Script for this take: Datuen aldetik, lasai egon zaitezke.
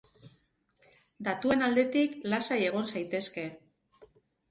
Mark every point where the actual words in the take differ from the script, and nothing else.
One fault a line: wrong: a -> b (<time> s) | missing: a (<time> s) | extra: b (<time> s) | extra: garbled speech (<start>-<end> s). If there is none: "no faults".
no faults